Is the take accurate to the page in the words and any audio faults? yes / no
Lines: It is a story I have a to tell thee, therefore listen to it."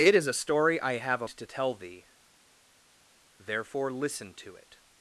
yes